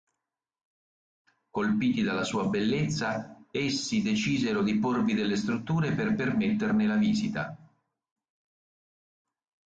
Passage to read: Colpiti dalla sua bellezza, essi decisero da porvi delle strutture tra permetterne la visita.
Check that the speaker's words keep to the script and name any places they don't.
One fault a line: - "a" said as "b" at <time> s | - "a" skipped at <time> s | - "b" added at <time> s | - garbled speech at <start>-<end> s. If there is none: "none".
- "da" said as "di" at 4.6 s
- "tra" said as "per" at 5.9 s